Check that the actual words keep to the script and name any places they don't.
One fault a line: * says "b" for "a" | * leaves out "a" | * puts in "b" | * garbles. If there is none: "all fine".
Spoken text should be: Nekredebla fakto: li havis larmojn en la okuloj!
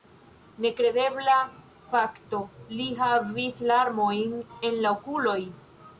all fine